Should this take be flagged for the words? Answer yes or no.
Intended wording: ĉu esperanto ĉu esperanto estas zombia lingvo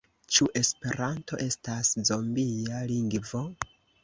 yes